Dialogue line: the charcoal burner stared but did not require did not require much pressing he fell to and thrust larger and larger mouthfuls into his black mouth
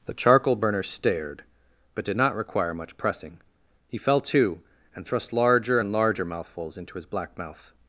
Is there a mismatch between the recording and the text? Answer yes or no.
yes